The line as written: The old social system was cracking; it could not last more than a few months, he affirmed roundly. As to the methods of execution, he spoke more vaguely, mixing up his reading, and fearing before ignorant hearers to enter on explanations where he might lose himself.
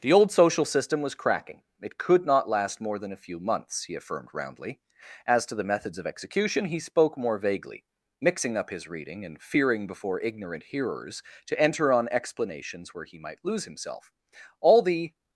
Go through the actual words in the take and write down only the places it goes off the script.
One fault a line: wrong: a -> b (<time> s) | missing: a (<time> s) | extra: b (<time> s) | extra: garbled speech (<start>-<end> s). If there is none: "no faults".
extra: All the (14.6 s)